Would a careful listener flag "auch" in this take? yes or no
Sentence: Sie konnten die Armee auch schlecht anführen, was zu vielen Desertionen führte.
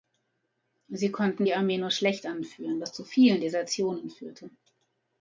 yes